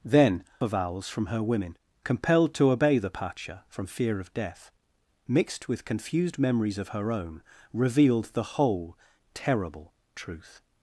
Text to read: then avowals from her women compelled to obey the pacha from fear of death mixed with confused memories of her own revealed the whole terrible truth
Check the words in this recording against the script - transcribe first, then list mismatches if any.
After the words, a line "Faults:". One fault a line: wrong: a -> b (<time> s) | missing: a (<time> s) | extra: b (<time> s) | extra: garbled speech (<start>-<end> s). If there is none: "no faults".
then avowals from her women compelled to obey the pacha from fear of death mixed with confused memories of her own revealed the whole terrible truth
Faults:
no faults